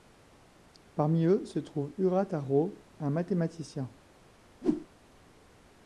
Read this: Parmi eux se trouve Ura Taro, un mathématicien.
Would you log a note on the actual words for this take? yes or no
no